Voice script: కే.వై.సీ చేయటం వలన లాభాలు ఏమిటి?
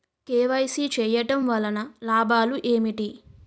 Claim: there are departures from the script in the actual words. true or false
false